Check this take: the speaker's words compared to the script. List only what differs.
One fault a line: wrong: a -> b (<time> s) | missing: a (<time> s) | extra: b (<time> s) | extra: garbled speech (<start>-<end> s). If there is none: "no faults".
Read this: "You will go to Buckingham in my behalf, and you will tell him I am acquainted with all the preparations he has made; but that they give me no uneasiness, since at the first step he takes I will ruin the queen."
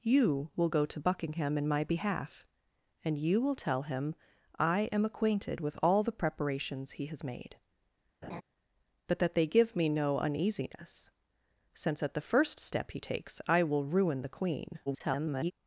extra: garbled speech (14.9-15.5 s)